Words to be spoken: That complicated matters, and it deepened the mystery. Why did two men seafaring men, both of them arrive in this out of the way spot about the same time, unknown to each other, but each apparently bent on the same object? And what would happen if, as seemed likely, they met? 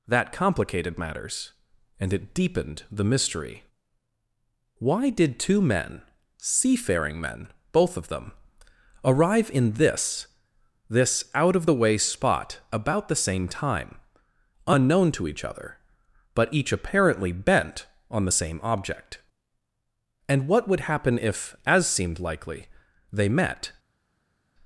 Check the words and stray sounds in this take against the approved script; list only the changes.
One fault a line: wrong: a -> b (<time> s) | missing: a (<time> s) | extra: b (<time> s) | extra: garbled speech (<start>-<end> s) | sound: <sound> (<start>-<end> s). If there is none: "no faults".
extra: this (10.9 s)